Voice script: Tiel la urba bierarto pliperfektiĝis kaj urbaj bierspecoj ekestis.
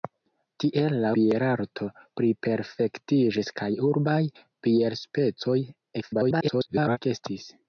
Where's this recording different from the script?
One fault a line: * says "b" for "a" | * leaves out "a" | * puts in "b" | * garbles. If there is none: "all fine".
* leaves out "urba"
* garbles